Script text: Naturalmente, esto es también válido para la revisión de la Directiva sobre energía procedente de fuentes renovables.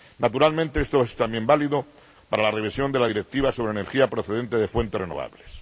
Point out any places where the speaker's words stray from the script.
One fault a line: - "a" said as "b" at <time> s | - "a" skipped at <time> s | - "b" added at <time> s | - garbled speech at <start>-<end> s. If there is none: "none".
none